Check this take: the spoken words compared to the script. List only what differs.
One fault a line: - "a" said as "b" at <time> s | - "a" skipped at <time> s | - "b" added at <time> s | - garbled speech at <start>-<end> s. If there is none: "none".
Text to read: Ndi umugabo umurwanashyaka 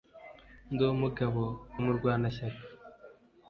none